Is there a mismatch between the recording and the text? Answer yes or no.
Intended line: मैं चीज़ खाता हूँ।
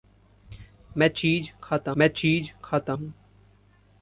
yes